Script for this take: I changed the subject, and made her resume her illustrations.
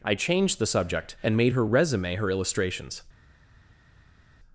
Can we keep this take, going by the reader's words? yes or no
yes